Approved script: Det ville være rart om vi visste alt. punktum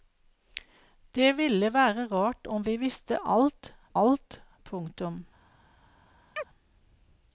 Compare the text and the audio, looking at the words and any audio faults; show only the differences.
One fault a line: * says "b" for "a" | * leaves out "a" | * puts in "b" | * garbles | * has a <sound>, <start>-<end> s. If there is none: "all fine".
* puts in "alt"
* has a chirp, 6.4-6.5 s